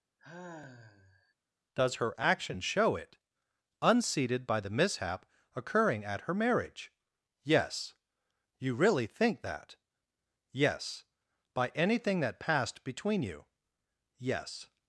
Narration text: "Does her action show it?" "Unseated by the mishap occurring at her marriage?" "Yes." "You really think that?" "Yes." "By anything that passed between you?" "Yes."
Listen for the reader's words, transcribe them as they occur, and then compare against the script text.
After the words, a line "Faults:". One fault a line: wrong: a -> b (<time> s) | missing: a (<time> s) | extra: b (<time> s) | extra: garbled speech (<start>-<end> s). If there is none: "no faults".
"Does her action show it?" "Unseated by the mishap occurring at her marriage?" "Yes." "You really think that?" "Yes." "By anything that passed between you?" "Yes."
Faults:
no faults